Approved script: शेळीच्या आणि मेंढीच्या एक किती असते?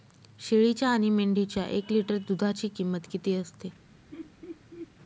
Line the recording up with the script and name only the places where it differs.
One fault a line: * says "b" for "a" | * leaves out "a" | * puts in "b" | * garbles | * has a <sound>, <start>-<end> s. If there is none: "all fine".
* puts in "लिटर दूधाची किंमत"
* has a laugh, 4.1-4.9 s